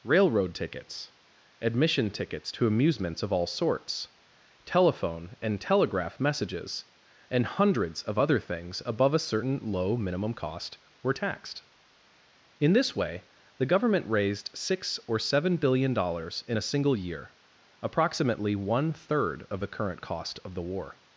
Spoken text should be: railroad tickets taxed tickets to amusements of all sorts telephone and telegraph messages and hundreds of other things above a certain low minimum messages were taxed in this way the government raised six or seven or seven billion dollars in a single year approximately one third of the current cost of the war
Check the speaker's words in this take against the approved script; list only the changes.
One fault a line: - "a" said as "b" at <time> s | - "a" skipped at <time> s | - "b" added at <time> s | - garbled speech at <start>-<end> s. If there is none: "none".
- "taxed" said as "admission" at 1.6 s
- "messages" said as "cost" at 10.3 s
- "or seven" skipped at 15.6 s